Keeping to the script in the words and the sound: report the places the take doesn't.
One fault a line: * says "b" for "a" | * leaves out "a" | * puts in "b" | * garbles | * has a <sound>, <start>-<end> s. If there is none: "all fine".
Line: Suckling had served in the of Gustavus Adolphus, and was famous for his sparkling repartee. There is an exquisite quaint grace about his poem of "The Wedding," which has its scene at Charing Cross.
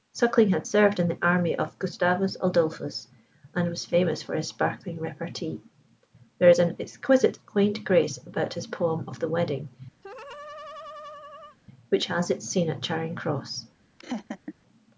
* puts in "army"
* has a laugh, 10.0-11.6 s
* has a laugh, 14.0-14.5 s